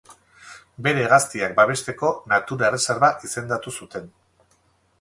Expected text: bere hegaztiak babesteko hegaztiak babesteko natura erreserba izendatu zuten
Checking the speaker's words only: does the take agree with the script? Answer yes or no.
no